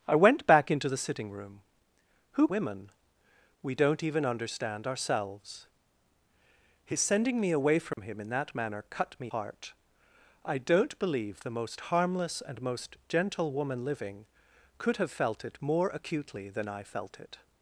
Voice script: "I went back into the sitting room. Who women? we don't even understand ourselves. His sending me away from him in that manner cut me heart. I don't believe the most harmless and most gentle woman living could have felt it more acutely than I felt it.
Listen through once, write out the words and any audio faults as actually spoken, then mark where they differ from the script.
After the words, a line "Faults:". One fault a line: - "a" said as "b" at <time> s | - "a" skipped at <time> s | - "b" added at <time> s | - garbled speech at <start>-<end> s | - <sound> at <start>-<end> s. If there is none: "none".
"I went back into the sitting room. Who women? we don't even understand ourselves. His sending me away from him in that manner cut me heart. I don't believe the most harmless and most gentle woman living could have felt it more acutely than I felt it.
Faults:
- dropout at 7.9-8.0 s